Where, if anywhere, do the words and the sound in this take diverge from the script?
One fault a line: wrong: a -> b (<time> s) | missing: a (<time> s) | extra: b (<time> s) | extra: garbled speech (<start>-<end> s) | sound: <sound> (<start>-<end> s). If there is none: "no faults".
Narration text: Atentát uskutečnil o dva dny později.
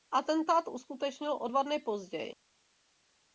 no faults